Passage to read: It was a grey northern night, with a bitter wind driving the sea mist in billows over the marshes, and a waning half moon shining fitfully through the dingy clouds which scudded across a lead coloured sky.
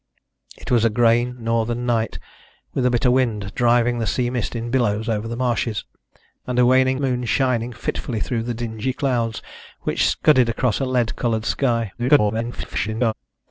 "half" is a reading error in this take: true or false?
true